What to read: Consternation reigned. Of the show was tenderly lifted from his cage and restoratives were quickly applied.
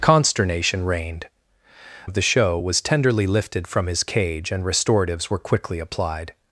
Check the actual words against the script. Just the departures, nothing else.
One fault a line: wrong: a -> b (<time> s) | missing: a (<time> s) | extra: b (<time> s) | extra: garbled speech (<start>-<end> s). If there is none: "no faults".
no faults